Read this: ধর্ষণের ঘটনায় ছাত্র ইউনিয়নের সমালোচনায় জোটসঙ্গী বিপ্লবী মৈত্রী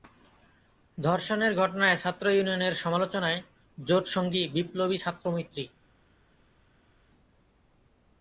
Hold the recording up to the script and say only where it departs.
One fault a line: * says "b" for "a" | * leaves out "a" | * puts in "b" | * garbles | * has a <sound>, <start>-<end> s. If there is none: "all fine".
* puts in "ছাত্র"